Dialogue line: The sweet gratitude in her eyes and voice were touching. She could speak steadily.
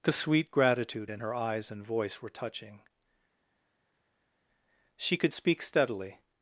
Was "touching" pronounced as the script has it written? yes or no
yes